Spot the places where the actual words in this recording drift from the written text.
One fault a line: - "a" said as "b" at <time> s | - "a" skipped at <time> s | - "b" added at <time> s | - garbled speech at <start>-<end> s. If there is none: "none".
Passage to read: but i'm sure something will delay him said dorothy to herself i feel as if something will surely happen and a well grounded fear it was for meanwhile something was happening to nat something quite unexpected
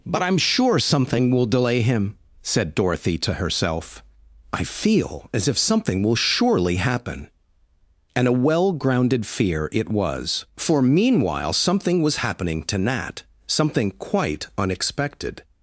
none